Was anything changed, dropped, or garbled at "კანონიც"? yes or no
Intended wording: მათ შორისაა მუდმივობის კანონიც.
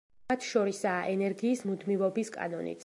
no